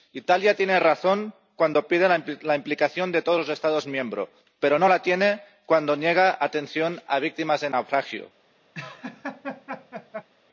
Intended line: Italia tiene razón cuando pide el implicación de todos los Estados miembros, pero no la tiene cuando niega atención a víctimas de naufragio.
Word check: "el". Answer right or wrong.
wrong